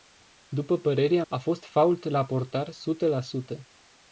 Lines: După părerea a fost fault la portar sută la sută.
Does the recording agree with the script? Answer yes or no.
yes